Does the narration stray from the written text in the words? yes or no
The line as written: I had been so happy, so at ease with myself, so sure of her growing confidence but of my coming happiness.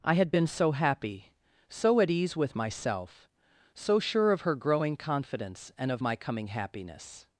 yes